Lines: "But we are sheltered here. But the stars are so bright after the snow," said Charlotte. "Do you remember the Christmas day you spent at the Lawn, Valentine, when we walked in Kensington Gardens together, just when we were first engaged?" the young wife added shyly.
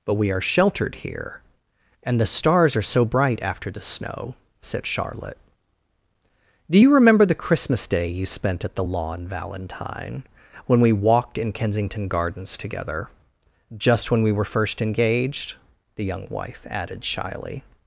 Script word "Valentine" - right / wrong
right